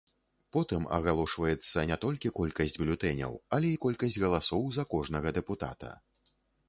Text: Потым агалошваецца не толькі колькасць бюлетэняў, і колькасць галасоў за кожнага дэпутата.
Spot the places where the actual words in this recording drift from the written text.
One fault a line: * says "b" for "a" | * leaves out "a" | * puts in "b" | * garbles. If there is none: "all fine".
* puts in "але"